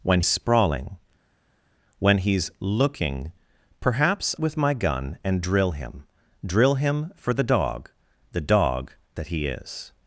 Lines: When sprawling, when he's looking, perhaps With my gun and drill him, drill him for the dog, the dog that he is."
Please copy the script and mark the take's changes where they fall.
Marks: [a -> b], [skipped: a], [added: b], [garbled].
When sprawling, when he's looking, perhaps With my gun and drill him, drill him for the dog, the dog that he is."